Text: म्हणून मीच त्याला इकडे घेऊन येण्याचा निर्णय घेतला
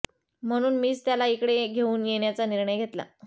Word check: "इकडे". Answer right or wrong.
right